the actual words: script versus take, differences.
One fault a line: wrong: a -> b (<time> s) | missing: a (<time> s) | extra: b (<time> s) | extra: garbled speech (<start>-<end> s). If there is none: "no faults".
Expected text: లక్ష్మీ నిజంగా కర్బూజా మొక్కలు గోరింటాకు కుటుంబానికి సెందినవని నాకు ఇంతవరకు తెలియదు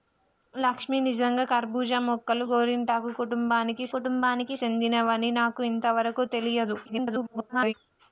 extra: కుటుంబానికి (3.9 s)
extra: garbled speech (6.9-7.7 s)